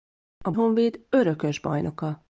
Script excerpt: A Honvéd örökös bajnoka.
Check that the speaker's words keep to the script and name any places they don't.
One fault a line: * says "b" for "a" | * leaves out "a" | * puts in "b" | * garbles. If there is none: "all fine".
all fine